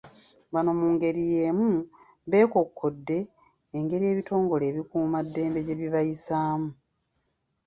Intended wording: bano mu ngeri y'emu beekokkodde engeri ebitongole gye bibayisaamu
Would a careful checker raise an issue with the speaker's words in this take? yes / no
yes